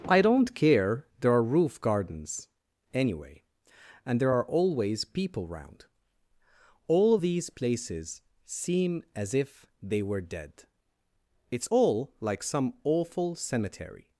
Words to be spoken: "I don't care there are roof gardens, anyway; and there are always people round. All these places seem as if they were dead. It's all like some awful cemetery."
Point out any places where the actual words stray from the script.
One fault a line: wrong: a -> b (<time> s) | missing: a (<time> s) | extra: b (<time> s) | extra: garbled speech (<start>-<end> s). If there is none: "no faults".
no faults